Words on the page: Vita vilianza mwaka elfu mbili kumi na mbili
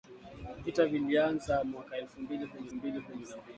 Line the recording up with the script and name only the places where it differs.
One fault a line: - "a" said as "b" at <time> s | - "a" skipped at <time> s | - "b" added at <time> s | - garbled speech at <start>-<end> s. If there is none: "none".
- "mbili kumi" added at 2.7 s